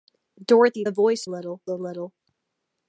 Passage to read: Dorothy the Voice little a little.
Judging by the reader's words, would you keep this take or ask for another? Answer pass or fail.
pass